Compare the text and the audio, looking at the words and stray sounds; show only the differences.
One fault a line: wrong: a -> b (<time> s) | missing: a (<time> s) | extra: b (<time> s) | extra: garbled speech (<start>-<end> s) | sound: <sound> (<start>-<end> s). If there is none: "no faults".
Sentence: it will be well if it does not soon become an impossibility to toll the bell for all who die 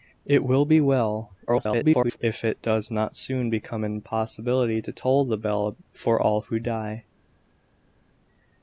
extra: garbled speech (1.5-2.2 s)